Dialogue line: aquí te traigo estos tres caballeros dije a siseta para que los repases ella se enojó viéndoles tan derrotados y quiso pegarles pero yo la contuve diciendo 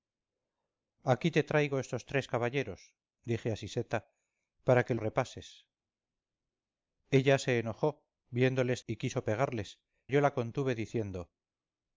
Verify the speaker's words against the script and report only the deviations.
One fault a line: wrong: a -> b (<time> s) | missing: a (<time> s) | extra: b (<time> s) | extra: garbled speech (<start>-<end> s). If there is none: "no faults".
missing: los (4.9 s)
missing: tan derrotados (8.8 s)
missing: pero (9.8 s)